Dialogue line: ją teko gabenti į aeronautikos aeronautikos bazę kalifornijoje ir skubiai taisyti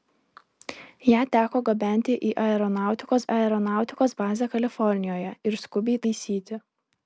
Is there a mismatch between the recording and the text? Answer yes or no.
no